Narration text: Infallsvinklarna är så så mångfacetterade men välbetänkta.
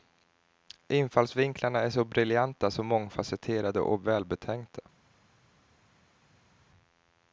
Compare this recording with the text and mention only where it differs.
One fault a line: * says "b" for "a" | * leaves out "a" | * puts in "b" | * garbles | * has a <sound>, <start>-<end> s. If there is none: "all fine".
* puts in "briljanta"
* says "och" for "men"